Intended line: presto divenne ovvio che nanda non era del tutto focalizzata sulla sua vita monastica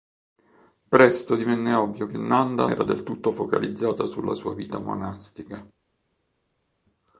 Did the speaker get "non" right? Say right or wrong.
wrong